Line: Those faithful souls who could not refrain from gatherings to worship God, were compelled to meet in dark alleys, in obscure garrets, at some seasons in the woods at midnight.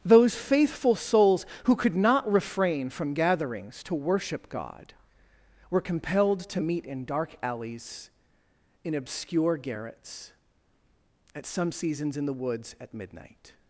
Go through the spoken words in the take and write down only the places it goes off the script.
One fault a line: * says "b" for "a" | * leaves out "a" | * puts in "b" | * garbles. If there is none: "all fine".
all fine